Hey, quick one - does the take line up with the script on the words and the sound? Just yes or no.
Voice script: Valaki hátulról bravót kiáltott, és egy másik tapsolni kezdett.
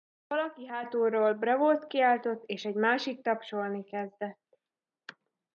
yes